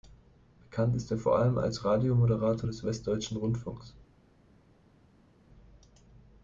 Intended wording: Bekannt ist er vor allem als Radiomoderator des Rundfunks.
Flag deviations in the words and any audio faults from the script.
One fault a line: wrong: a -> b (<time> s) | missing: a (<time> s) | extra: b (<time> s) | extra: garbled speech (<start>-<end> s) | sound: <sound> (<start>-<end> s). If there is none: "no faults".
extra: Westdeutschen (2.8 s)